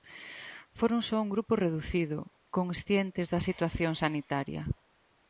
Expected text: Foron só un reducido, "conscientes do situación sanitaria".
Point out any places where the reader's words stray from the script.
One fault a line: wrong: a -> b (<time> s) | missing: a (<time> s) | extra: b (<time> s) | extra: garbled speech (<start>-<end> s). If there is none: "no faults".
extra: grupo (1.4 s)
wrong: do -> da (3.3 s)